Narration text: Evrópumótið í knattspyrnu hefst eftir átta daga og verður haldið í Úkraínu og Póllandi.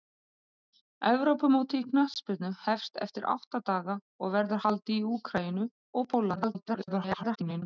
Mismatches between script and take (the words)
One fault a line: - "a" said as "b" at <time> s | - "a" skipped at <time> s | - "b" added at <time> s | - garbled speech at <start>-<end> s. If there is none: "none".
- garbled speech at 6.4-7.6 s